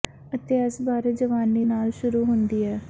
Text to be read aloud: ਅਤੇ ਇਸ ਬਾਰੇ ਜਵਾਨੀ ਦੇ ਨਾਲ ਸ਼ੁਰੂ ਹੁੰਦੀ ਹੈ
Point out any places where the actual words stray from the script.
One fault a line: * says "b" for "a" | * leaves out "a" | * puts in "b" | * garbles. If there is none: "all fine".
* leaves out "ਦੇ"